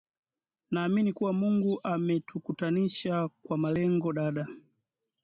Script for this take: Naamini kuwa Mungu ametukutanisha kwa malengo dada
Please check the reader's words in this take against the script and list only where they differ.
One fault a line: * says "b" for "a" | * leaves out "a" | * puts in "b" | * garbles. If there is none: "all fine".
all fine